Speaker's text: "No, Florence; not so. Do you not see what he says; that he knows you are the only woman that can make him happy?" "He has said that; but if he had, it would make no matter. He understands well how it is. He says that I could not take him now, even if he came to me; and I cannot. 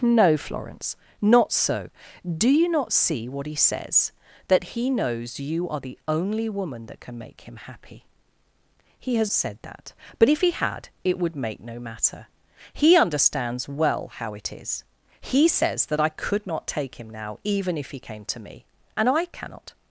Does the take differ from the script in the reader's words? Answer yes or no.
no